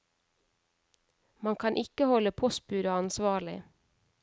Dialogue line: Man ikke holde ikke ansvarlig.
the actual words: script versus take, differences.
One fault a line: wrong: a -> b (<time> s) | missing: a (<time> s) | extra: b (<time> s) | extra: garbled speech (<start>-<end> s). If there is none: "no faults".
extra: kan (1.6 s)
wrong: ikke -> postbudet (2.3 s)